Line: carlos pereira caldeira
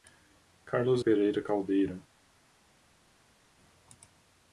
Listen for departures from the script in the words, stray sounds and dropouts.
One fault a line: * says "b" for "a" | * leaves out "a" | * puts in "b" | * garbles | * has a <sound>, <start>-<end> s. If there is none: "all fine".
all fine